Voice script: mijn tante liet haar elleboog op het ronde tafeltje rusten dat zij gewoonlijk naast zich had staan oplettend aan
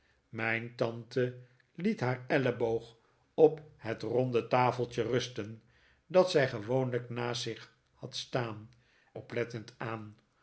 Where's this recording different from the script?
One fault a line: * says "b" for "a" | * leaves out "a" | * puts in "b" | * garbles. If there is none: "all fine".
all fine